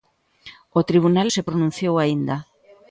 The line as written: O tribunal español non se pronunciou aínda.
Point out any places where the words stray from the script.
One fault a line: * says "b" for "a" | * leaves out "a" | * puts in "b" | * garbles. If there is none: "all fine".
* leaves out "español non"